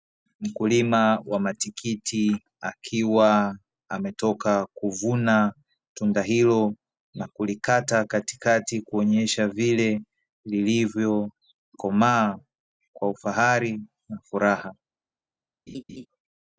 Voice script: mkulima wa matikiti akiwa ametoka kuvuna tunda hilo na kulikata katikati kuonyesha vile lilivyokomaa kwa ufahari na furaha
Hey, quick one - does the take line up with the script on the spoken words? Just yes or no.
yes